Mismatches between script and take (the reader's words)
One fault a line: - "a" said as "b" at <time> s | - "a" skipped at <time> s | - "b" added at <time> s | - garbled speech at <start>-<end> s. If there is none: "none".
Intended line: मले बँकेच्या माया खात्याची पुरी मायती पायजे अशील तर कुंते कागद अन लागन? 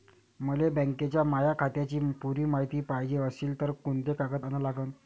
none